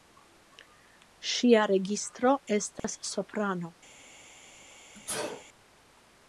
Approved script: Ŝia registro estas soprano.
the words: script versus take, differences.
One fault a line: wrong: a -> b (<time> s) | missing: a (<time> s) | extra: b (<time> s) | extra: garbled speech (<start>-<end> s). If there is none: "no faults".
no faults